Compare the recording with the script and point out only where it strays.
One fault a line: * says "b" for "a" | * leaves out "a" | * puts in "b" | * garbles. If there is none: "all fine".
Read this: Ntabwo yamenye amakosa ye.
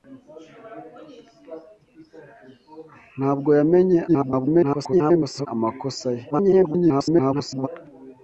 * garbles
* garbles